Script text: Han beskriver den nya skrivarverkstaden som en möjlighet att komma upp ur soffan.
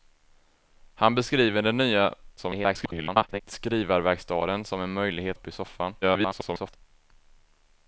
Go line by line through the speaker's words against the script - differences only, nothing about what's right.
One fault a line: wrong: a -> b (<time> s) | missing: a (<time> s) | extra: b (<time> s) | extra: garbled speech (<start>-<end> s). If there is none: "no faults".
extra: garbled speech (2.4-3.4 s)
missing: att komma (5.4 s)
extra: garbled speech (6.0-6.8 s)